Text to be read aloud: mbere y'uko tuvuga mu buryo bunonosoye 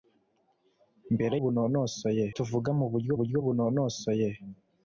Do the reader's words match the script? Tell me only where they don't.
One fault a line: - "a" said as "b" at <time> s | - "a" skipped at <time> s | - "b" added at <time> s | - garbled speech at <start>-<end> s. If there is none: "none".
- "y'uko" said as "bunonosoye" at 1.4 s
- "buryo" added at 3.2 s